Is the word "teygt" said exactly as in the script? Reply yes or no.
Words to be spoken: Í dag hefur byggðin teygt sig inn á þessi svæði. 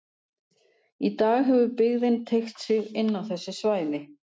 yes